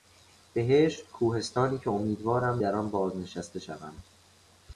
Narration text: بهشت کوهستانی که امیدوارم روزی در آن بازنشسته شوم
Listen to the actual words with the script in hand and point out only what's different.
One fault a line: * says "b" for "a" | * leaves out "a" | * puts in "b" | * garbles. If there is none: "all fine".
* leaves out "روزی"